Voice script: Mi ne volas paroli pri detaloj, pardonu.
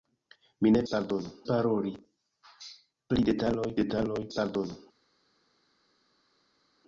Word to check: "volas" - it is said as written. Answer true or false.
false